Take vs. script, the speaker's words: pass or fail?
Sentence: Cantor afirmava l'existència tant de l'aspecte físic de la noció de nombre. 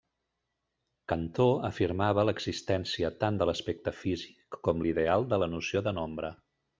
fail